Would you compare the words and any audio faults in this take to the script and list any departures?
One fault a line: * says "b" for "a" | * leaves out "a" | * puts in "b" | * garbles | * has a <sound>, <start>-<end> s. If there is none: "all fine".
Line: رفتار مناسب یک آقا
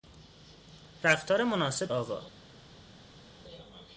* leaves out "یک"